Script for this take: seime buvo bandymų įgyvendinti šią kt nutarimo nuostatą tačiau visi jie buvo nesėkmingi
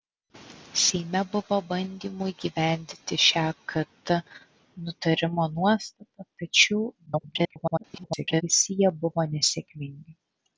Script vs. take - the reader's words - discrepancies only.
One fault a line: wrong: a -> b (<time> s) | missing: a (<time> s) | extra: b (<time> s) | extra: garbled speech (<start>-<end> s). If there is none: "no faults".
extra: garbled speech (7.1-8.4 s)